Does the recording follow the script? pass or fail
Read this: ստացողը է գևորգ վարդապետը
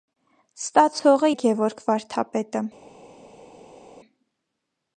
pass